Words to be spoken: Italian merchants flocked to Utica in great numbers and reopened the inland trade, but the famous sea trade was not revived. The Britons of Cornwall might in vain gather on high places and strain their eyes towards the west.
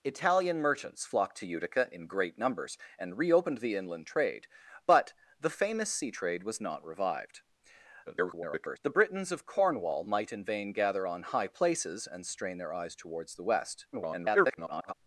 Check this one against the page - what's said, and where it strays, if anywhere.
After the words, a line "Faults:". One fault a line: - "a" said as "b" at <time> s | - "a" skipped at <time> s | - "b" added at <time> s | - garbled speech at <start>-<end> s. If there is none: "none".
Italian merchants flocked to Utica in great numbers and reopened the inland trade, but the famous sea trade was not revived. [garbled] The Britons of Cornwall might in vain gather on high places and strain their eyes towards the west. [garbled]
Faults:
- garbled speech at 8.1-8.8 s
- garbled speech at 13.9-14.9 s